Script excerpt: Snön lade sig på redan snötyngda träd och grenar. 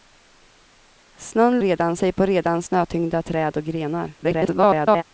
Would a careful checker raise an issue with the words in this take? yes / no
yes